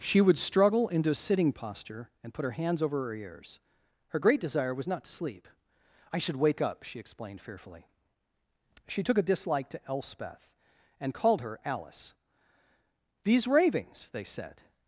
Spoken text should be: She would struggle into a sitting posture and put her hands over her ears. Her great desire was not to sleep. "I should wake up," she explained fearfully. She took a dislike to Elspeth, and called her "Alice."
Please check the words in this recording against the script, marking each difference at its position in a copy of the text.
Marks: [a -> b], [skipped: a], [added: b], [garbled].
She would struggle into a sitting posture and put her hands over her ears. Her great desire was not to sleep. "I should wake up," she explained fearfully. She took a dislike to Elspeth, and called her "Alice." [added: These ravings they said]